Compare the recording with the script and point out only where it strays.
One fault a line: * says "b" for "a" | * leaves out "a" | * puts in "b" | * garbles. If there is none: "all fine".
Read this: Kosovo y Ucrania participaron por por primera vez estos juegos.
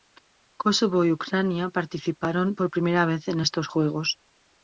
* leaves out "por"
* puts in "en"